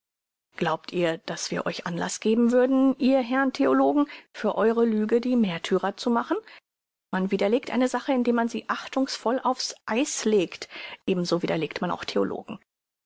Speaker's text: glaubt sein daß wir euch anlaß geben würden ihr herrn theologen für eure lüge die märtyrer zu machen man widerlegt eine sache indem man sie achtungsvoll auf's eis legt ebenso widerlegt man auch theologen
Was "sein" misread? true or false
true